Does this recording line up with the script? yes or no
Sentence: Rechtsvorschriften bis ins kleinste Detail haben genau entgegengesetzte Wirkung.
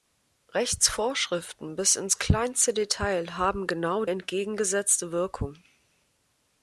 yes